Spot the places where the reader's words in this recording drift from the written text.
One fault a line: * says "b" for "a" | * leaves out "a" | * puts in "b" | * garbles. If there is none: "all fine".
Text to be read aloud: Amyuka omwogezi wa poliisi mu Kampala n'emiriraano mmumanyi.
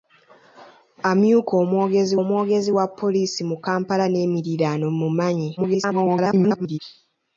* puts in "omwogezi"
* garbles